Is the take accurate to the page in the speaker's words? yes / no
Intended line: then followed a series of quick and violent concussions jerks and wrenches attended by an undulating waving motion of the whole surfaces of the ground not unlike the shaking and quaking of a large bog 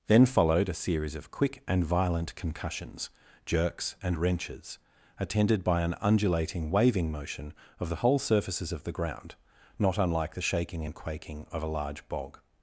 yes